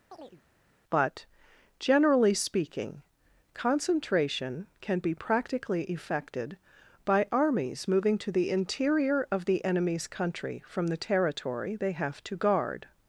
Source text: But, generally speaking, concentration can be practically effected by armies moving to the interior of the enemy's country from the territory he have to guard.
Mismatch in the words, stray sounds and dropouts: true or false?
true